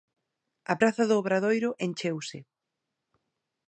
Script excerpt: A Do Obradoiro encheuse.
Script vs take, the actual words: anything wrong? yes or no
yes